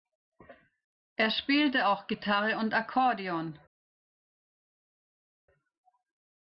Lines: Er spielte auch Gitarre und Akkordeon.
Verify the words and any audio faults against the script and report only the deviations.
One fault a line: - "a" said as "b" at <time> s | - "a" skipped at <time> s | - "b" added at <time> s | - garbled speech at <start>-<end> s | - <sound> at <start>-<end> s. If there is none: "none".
none